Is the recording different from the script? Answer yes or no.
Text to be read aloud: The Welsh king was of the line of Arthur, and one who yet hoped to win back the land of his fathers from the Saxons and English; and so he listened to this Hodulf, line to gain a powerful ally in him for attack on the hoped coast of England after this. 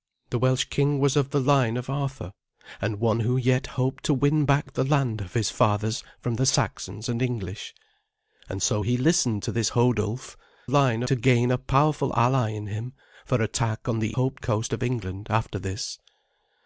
no